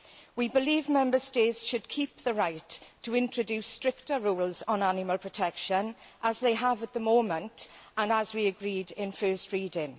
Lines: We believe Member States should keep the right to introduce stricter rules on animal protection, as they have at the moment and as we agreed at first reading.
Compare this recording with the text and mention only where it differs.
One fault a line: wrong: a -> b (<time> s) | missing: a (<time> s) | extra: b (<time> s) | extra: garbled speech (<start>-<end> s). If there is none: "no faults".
no faults